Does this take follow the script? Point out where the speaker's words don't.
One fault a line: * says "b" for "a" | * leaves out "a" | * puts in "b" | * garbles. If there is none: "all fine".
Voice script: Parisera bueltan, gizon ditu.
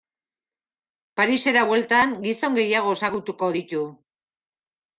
* puts in "gehiago ezagutuko"